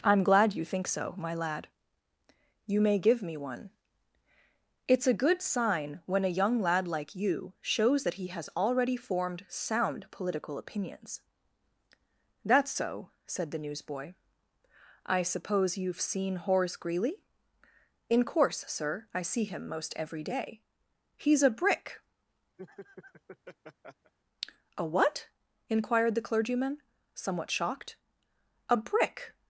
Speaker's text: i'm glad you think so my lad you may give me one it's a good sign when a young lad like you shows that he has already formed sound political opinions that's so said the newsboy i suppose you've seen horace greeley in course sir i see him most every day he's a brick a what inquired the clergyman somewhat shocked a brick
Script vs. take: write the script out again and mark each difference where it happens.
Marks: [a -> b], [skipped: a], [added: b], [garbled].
i'm glad you think so my lad you may give me one it's a good sign when a young lad like you shows that he has already formed sound political opinions that's so said the newsboy i suppose you've seen horace greeley in course sir i see him most every day he's a brick a what inquired the clergyman somewhat shocked a brick